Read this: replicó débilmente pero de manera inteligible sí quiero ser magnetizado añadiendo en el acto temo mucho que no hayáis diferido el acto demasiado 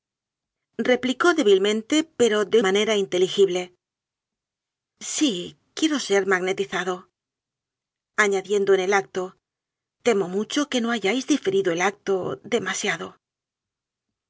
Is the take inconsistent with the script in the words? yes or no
no